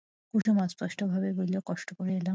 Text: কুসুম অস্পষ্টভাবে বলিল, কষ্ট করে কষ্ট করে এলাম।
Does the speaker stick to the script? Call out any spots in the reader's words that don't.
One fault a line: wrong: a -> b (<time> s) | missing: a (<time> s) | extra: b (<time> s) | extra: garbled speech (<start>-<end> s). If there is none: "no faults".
missing: কষ্ট করে (2.1 s)